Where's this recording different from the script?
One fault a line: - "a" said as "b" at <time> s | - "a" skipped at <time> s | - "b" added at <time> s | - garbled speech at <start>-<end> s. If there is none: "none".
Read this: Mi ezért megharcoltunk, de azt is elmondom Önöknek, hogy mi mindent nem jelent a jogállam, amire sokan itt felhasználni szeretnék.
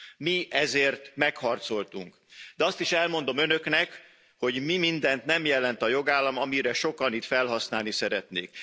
none